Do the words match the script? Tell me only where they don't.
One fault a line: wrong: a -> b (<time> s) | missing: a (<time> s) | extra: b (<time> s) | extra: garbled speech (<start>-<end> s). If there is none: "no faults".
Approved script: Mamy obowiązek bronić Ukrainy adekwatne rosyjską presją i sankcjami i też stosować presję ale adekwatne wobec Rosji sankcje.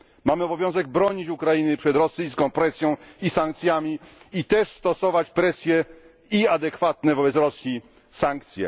wrong: adekwatne -> przed (1.8 s)
wrong: ale -> i (6.3 s)